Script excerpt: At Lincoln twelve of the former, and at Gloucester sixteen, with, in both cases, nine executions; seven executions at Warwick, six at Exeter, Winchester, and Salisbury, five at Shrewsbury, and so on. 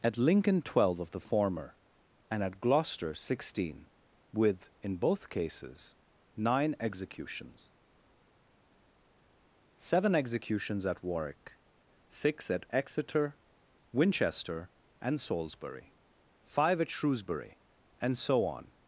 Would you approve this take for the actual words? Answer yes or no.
yes